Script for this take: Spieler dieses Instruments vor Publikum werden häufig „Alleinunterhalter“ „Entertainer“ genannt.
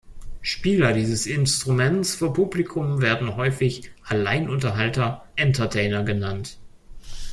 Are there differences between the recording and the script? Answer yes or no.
no